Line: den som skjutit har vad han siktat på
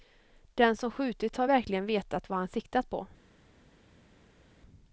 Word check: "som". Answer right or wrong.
right